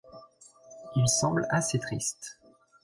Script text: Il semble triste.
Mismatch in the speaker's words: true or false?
true